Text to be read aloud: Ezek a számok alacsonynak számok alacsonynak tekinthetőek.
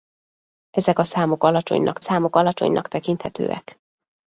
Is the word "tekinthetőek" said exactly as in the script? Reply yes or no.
yes